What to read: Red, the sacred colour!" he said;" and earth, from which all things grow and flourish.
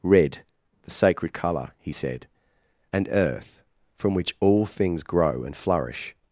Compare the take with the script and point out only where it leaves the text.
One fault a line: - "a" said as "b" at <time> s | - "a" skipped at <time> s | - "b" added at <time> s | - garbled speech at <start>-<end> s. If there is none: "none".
none